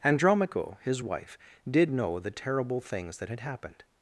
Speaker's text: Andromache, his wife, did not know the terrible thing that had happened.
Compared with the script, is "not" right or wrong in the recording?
wrong